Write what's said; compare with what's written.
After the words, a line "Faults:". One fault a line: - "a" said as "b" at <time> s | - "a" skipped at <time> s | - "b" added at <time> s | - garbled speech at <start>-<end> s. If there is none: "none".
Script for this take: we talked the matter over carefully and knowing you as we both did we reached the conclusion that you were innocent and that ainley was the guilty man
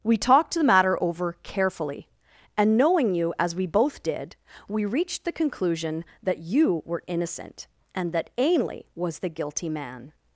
we talked the matter over carefully and knowing you as we both did we reached the conclusion that you were innocent and that ainley was the guilty man
Faults:
none